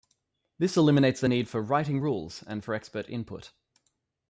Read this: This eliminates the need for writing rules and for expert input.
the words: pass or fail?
pass